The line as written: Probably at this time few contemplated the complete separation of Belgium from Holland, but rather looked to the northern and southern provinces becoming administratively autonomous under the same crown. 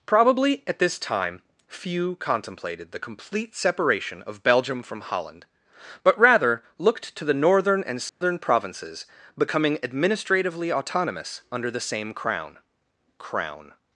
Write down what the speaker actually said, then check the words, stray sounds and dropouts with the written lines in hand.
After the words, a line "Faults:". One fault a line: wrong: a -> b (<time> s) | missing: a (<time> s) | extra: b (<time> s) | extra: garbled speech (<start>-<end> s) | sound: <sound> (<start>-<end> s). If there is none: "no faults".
Probably at this time few contemplated the complete separation of Belgium from Holland, but rather looked to the northern and southern provinces becoming administratively autonomous under the same crown crown.
Faults:
sound: dropout (8.1-8.2 s)
extra: crown (13.2 s)